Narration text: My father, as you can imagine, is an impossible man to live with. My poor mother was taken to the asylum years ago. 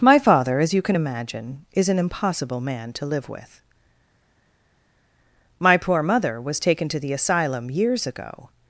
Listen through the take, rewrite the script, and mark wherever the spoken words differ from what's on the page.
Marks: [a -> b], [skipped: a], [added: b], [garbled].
My father, as you can imagine, is an impossible man to live with. My poor mother was taken to the asylum years ago.